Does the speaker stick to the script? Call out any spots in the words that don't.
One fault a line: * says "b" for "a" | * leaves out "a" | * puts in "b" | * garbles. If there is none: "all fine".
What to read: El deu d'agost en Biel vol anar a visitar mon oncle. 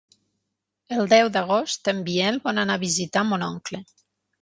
all fine